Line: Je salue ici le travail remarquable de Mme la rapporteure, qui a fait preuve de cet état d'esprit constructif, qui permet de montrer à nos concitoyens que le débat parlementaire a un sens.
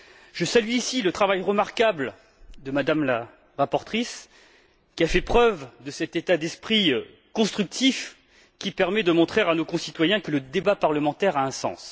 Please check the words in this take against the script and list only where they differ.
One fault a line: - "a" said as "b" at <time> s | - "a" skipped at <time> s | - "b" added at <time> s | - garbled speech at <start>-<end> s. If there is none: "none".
none